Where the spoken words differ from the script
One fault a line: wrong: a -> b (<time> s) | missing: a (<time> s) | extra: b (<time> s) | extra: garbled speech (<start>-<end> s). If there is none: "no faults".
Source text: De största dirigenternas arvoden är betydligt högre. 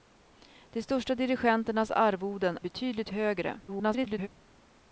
missing: är (2.6 s)
extra: garbled speech (3.7-4.3 s)